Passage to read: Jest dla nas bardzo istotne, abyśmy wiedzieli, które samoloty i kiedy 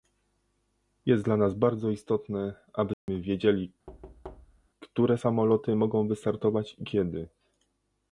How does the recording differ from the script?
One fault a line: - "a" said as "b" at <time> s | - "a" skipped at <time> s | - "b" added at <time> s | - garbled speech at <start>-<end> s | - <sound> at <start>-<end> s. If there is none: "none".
- dropout at 2.9-3.1 s
- thud at 3.9-4.7 s
- "mogą wystartować" added at 5.8 s